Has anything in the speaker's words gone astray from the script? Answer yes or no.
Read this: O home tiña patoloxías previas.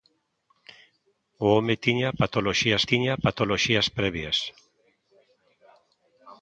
yes